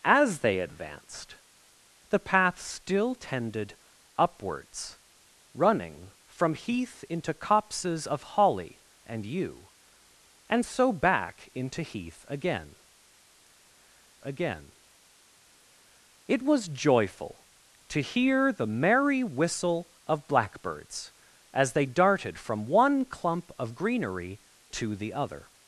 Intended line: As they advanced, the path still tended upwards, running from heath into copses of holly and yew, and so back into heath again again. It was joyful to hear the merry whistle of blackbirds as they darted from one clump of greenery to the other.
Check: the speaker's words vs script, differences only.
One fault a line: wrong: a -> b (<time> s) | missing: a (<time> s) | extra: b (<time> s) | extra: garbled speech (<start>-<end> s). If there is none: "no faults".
no faults